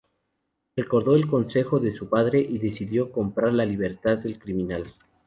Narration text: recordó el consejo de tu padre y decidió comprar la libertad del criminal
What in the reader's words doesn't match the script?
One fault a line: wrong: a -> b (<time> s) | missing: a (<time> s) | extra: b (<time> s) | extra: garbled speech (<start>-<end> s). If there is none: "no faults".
wrong: tu -> su (1.9 s)